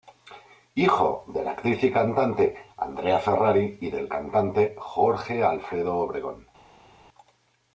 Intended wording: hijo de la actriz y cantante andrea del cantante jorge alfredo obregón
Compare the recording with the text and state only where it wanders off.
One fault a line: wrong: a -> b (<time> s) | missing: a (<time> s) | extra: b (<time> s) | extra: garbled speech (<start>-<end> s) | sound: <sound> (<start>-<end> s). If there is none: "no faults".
extra: ferrari y (3.2 s)